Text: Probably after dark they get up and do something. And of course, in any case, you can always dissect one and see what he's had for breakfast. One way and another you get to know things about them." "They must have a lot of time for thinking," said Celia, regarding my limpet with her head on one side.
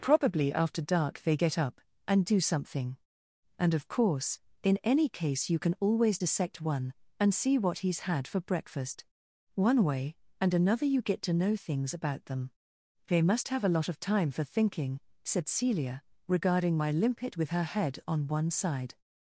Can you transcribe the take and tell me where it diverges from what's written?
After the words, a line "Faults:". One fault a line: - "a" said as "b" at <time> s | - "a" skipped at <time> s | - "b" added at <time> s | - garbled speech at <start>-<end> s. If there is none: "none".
Probably after dark they get up and do something. And of course, in any case, you can always dissect one and see what he's had for breakfast. One way and another you get to know things about them." "They must have a lot of time for thinking," said Celia, regarding my limpet with her head on one side.
Faults:
none